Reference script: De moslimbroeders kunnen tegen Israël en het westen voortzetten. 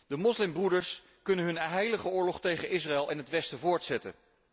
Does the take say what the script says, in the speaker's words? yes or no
no